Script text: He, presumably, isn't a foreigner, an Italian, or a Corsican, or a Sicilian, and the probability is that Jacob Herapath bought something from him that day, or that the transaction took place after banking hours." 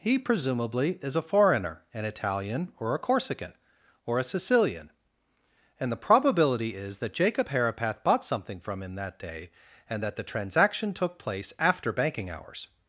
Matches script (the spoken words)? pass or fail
fail